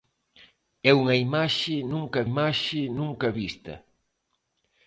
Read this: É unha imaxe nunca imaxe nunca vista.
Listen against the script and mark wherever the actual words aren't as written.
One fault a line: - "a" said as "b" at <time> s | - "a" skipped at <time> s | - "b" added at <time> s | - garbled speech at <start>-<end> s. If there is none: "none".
none